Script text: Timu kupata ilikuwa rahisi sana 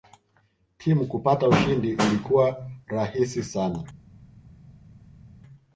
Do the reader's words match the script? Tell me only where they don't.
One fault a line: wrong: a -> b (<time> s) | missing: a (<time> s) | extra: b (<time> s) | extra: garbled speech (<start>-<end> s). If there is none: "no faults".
extra: ushindi (1.5 s)